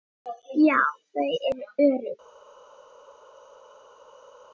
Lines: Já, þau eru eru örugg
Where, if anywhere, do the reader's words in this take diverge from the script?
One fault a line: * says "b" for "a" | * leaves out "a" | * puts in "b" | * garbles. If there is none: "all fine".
* leaves out "eru"